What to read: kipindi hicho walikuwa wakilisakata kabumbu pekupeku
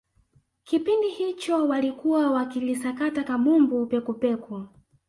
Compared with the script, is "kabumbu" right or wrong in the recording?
right